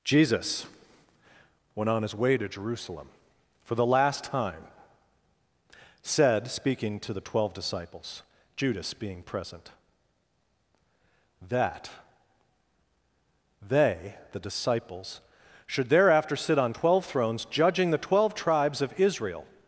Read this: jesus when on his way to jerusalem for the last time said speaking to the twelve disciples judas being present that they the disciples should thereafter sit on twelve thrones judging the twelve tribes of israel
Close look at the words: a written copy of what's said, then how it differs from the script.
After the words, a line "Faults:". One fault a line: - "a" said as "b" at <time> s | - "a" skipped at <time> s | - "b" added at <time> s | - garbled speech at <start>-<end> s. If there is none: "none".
jesus when on his way to jerusalem for the last time said speaking to the twelve disciples judas being present that they the disciples should thereafter sit on twelve thrones judging the twelve tribes of israel
Faults:
none